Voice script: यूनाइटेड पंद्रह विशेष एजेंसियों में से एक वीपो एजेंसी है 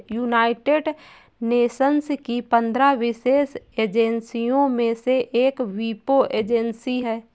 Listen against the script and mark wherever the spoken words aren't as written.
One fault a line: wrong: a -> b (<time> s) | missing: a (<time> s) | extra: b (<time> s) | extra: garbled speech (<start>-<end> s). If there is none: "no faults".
extra: नेशंस की (1.4 s)